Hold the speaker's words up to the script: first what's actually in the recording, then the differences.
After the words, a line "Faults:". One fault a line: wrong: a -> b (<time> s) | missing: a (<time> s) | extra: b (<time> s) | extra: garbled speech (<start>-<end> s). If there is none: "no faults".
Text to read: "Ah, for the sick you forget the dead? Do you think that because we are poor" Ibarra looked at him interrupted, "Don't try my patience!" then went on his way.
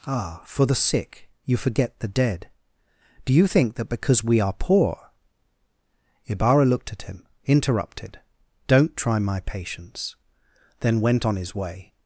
"Ah, for the sick you forget the dead? Do you think that because we are poor" Ibarra looked at him interrupted, "Don't try my patience!" then went on his way.
Faults:
no faults